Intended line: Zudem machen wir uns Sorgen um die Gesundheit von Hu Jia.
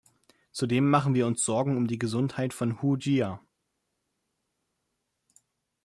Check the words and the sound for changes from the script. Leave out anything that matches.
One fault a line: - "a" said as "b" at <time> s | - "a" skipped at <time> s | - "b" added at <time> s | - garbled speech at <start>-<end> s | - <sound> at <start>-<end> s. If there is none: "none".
none